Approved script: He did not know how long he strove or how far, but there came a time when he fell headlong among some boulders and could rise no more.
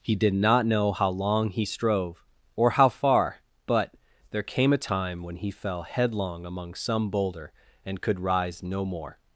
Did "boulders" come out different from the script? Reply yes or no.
yes